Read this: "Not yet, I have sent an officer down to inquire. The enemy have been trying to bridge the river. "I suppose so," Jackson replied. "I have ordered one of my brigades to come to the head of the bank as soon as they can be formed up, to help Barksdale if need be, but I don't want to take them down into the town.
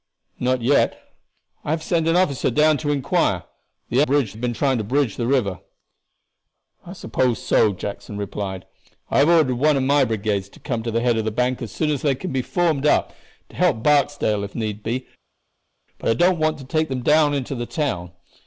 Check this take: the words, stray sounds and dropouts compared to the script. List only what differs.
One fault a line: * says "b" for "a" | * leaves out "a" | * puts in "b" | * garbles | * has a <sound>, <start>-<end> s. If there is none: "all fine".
* says "bridge" for "enemy"